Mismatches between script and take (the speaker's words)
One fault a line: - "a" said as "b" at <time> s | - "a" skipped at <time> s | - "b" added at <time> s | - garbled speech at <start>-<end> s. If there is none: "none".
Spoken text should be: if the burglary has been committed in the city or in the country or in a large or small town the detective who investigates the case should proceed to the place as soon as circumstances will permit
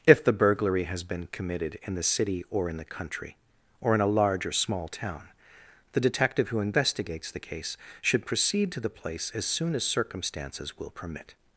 none